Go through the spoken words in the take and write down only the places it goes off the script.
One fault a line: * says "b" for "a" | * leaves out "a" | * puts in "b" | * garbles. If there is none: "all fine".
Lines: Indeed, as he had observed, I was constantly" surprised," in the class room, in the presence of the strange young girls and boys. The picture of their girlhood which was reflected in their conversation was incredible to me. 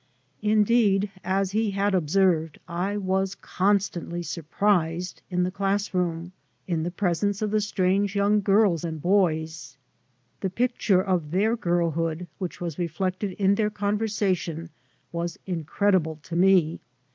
all fine